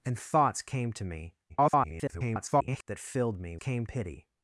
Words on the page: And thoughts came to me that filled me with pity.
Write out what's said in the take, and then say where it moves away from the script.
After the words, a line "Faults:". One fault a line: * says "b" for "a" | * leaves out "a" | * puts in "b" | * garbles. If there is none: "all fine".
And thoughts came to me [garbled] that filled me came pity.
Faults:
* garbles
* says "came" for "with"